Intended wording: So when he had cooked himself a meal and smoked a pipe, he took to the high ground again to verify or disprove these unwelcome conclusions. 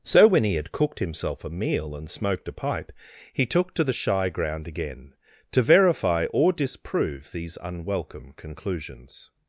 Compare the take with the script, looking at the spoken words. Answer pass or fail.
fail